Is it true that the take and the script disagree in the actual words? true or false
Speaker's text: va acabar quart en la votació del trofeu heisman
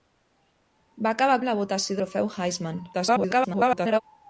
true